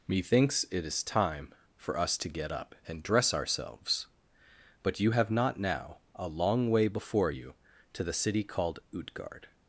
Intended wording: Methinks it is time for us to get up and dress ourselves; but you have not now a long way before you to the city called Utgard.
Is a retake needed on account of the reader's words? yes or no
no